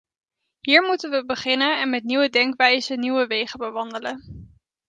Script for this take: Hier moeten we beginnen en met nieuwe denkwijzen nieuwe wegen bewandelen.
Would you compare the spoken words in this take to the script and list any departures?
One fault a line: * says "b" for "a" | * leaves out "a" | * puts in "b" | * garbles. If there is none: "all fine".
all fine